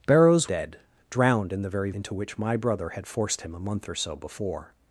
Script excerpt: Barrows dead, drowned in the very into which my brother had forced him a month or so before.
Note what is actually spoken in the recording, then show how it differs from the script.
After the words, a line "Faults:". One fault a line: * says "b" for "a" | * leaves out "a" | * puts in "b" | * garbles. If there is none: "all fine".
Barrows dead, drowned in the very into which my brother had forced him a month or so before.
Faults:
all fine